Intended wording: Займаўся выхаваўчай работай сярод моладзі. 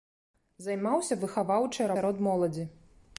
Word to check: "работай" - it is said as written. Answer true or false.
false